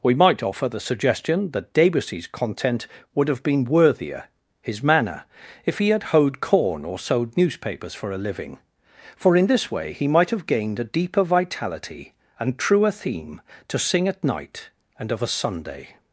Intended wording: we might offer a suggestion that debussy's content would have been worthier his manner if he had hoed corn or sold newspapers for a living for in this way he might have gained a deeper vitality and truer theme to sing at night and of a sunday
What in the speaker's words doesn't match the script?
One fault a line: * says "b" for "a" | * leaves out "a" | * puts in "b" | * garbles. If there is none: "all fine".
* says "the" for "a"